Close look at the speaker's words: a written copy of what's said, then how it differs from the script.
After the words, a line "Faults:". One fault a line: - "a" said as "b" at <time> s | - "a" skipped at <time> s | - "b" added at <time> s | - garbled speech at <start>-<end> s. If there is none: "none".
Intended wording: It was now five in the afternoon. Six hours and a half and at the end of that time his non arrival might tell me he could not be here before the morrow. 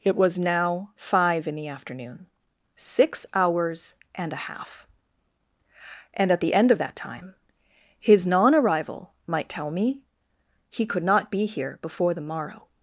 It was now five in the afternoon. Six hours and a half and at the end of that time his non arrival might tell me he could not be here before the morrow.
Faults:
none